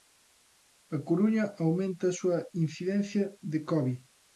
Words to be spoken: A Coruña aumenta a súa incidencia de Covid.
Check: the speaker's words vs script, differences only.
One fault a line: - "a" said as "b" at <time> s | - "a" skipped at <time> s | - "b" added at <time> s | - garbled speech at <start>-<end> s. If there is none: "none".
none